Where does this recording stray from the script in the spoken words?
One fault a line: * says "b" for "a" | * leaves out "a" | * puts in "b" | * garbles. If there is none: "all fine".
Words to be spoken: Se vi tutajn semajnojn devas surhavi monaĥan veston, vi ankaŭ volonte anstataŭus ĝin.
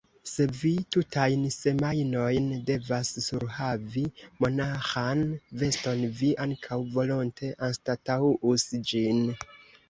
all fine